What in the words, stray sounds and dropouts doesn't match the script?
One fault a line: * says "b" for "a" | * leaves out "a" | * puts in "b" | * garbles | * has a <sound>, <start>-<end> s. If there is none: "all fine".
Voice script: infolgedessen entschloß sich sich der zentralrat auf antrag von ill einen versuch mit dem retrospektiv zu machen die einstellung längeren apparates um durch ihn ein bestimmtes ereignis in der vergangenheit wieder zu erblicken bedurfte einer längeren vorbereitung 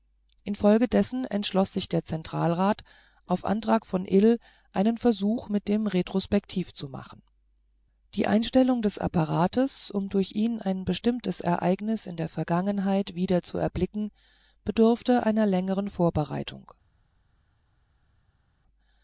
* leaves out "sich"
* says "des" for "längeren"